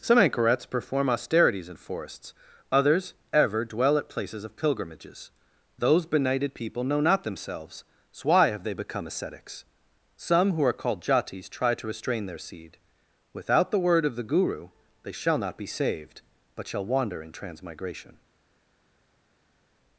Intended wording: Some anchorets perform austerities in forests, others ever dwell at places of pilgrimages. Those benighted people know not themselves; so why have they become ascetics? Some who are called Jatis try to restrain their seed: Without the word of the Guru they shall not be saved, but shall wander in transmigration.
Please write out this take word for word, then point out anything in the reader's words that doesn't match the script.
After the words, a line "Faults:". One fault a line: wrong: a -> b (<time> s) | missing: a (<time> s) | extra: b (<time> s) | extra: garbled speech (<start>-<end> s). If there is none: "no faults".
Some anchorets perform austerities in forests, others ever dwell at places of pilgrimages. Those benighted people know not themselves; so why have they become ascetics? Some who are called Jatis try to restrain their seed: Without the word of the Guru they shall not be saved, but shall wander in transmigration.
Faults:
no faults